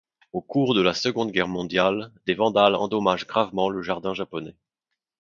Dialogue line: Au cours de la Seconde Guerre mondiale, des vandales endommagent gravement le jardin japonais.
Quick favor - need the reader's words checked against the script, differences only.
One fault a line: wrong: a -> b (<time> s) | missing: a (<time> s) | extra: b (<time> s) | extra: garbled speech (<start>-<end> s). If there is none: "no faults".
no faults